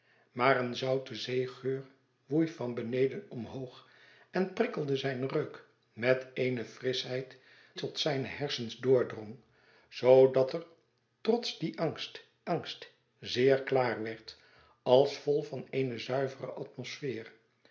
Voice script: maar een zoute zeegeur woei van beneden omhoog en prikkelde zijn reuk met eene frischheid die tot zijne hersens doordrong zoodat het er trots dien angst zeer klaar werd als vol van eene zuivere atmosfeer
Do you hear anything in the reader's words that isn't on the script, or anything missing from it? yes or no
yes